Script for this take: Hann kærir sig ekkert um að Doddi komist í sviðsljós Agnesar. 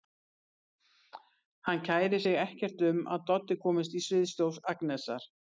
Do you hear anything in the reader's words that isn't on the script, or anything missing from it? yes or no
no